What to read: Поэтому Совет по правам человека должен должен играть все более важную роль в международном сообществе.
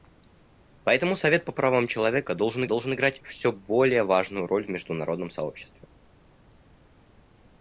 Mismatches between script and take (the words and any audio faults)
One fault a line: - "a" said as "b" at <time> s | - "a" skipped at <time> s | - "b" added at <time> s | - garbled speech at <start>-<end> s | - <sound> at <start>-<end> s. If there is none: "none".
none